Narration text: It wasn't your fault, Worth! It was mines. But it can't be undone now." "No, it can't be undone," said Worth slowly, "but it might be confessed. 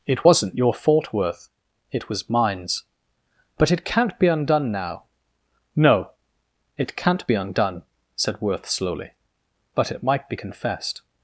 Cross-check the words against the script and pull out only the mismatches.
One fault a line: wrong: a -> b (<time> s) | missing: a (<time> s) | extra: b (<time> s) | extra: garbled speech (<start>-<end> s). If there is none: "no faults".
no faults